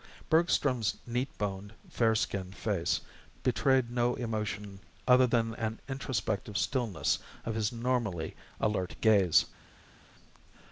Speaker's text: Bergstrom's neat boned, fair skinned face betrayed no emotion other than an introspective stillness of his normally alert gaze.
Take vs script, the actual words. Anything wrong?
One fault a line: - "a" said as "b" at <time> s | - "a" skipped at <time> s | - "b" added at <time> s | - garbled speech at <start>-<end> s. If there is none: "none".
none